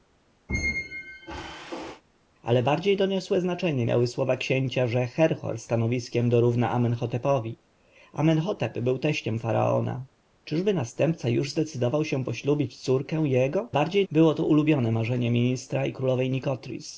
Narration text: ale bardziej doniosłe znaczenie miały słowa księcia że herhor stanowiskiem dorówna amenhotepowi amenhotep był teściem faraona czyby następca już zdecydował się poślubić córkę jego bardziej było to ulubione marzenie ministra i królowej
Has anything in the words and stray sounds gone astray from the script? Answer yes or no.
yes